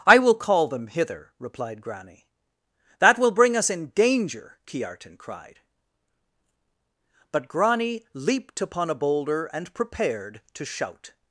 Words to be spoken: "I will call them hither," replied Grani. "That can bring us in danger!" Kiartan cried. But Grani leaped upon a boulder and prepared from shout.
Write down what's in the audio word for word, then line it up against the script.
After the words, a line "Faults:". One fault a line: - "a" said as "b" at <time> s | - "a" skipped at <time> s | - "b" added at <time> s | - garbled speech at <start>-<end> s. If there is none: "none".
"I will call them hither," replied Grani. "That will bring us in danger!" Kiartan cried. But Grani leaped upon a boulder and prepared to shout.
Faults:
- "can" said as "will" at 3.2 s
- "from" said as "to" at 10.5 s